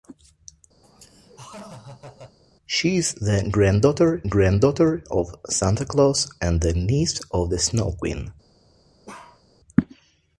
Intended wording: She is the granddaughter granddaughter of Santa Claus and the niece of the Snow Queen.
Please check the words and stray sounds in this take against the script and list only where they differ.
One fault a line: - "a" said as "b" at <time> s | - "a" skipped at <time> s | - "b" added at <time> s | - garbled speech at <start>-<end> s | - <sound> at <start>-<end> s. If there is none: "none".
- laugh at 0.8-2.4 s
- bark at 9.1-9.4 s